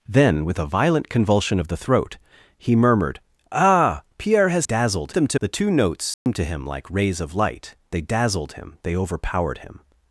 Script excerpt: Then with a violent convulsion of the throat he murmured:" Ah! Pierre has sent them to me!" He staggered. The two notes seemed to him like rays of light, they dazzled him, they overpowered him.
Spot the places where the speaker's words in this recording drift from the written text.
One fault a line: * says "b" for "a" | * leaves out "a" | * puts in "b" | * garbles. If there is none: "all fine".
* says "dazzled" for "sent"
* leaves out "me He staggered"